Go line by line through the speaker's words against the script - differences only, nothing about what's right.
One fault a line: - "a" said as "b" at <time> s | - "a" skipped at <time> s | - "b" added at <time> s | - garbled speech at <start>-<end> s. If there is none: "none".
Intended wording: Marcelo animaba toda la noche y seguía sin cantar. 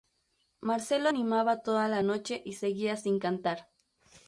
none